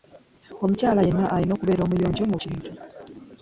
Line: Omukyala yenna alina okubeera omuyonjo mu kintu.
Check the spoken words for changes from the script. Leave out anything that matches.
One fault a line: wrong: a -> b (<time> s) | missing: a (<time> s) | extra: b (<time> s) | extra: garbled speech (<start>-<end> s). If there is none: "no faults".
no faults